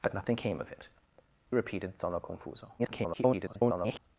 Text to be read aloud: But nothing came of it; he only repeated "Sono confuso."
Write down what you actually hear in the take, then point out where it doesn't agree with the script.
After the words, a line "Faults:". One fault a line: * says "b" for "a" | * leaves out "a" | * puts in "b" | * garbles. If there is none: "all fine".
But nothing came of it; repeated "Sono confuso." [garbled]
Faults:
* leaves out "he only"
* garbles